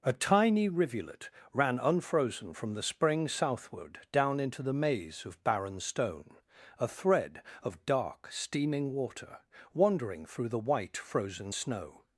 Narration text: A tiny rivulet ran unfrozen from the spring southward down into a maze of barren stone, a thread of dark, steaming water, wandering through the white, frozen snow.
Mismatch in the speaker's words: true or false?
true